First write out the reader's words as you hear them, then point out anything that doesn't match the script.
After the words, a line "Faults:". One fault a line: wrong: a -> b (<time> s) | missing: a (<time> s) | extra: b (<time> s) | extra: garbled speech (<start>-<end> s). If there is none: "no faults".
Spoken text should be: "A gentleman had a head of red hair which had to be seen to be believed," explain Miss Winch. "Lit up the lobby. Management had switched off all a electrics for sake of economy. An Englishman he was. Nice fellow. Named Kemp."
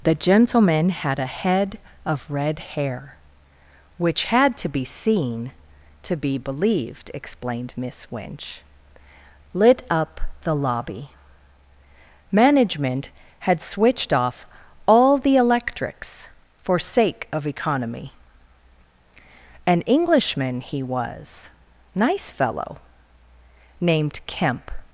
"The gentleman had a head of red hair which had to be seen to be believed," explained Miss Winch. "Lit up the lobby. Management had switched off all the electrics for sake of economy. An Englishman he was. Nice fellow. Named Kemp."
Faults:
wrong: A -> The (0.0 s)
wrong: explain -> explained (7.1 s)
wrong: a -> the (15.2 s)